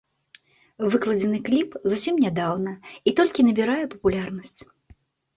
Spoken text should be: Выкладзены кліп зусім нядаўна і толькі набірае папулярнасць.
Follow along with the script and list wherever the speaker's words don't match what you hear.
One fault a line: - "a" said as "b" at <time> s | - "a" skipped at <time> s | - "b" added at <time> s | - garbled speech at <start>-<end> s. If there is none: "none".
none